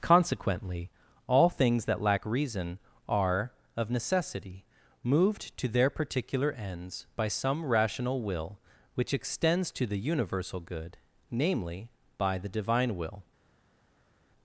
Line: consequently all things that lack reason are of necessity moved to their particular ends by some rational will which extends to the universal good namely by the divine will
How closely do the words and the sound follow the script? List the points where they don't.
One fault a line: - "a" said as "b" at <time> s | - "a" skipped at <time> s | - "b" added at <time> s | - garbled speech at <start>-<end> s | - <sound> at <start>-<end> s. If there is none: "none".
none